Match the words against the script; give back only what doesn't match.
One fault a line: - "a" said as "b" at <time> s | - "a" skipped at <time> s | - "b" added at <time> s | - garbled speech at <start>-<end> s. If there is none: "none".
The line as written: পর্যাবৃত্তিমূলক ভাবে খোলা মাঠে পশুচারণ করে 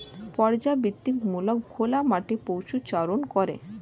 - "ভাবে" skipped at 1.6 s